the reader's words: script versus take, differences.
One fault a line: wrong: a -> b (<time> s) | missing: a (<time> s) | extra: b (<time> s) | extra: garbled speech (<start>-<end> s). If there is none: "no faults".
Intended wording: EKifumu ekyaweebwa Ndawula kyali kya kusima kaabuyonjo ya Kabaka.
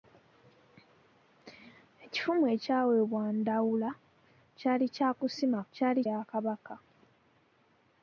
wrong: kaabuyonjo -> kyali (5.7 s)